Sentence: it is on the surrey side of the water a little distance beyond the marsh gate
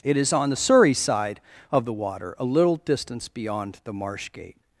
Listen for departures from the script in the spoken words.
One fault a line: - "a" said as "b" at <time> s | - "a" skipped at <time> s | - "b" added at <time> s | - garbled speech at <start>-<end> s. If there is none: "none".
none